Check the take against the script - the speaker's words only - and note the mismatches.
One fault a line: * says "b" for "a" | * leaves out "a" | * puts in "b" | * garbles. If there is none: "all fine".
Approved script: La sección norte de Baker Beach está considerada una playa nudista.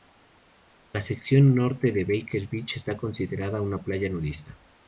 all fine